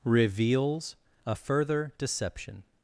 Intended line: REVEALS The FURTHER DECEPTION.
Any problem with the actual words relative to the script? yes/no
yes